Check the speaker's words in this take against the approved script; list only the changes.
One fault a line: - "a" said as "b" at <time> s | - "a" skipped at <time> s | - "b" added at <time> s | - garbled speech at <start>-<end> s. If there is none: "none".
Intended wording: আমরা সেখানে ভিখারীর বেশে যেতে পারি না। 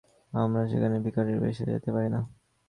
none